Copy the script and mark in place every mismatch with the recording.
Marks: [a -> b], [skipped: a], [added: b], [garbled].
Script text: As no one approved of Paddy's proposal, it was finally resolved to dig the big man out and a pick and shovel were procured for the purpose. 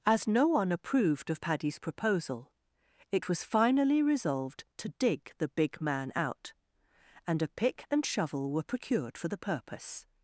As no one approved of Paddy's proposal, it was finally resolved to dig the big man out and a pick and shovel were procured for the purpose.